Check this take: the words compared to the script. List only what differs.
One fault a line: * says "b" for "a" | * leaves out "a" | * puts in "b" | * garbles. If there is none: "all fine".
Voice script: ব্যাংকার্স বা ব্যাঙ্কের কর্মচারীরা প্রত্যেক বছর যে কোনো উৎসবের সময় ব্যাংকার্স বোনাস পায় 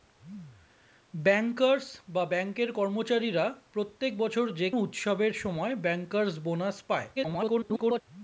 * leaves out "কোনো"
* garbles